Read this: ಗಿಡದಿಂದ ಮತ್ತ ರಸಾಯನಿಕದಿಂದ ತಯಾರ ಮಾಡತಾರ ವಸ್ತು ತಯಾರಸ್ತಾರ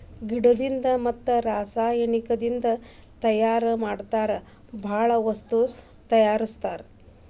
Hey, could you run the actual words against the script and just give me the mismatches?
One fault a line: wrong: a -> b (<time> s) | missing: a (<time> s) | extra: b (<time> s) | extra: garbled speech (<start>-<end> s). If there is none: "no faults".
extra: ಬಾಳ (4.8 s)